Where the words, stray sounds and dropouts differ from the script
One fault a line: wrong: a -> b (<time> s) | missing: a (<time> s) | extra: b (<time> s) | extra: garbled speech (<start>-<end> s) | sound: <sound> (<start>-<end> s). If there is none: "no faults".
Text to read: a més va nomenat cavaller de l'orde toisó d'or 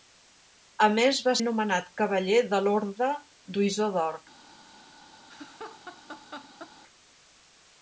sound: laugh (5.3-6.7 s)